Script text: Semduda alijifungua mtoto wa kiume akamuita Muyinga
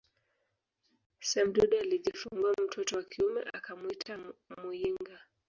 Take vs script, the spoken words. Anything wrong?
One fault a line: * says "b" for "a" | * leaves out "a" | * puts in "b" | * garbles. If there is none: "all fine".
all fine